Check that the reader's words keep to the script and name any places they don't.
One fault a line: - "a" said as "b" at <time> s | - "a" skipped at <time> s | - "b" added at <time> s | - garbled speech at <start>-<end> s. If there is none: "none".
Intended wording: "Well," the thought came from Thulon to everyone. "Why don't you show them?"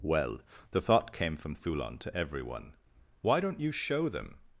none